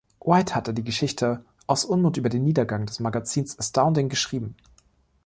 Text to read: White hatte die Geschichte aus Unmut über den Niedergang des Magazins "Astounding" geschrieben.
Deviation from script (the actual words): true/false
false